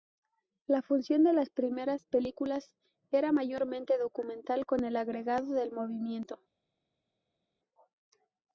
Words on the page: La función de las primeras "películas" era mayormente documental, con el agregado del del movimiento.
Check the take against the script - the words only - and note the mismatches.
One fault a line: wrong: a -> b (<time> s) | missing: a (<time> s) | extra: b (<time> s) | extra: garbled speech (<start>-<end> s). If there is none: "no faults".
missing: del (5.7 s)